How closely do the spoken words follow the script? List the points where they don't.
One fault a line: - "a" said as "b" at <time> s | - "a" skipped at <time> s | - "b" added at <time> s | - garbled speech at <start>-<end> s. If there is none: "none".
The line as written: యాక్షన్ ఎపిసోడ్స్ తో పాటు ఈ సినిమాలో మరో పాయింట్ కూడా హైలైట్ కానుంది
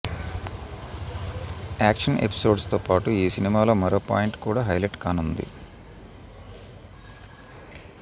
none